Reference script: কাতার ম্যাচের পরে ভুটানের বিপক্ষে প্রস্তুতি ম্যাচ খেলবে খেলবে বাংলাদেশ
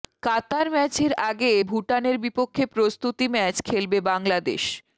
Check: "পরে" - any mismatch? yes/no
yes